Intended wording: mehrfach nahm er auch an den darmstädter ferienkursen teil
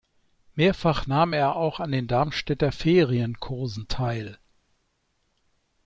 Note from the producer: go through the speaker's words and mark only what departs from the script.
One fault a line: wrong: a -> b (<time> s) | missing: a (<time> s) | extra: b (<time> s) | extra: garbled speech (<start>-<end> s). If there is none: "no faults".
no faults